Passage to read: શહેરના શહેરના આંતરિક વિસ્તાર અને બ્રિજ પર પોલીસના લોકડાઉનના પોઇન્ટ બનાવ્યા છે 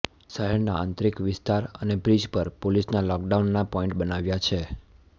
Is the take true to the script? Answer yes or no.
no